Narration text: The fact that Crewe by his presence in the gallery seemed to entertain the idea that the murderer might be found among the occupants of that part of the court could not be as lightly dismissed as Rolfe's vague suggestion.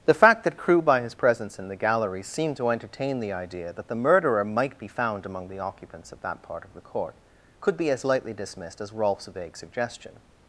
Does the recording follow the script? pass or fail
fail